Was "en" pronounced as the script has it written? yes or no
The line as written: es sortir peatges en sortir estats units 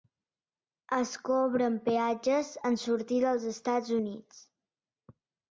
yes